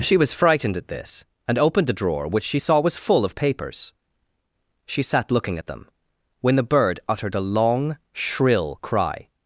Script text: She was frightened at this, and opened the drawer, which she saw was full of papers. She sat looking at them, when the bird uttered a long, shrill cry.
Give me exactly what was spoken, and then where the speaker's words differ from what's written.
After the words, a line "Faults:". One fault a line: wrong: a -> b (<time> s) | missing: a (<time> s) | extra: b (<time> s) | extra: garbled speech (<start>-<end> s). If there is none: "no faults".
She was frightened at this, and opened the drawer, which she saw was full of papers. She sat looking at them, when the bird uttered a long, shrill cry.
Faults:
no faults